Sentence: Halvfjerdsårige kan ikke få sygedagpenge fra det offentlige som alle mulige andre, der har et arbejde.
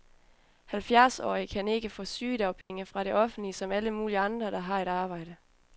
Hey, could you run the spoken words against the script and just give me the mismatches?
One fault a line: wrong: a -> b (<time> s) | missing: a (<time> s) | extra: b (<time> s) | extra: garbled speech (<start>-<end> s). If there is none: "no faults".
no faults